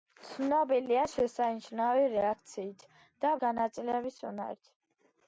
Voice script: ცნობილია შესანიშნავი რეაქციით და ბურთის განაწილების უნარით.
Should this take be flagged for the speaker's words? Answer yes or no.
yes